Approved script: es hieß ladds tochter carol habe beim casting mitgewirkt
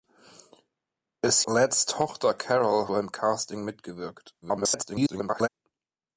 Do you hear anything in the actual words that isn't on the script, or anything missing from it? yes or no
yes